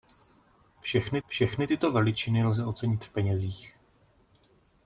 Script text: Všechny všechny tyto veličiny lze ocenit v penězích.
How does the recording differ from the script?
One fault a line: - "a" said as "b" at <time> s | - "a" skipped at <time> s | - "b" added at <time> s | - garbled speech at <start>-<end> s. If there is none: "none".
none